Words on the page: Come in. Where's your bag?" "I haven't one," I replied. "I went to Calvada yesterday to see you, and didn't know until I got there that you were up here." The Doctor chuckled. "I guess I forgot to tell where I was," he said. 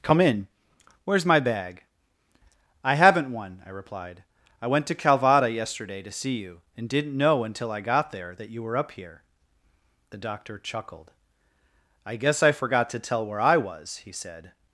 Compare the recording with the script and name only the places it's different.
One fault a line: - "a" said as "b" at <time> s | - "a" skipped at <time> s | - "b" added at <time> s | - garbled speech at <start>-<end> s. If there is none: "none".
- "your" said as "my" at 1.2 s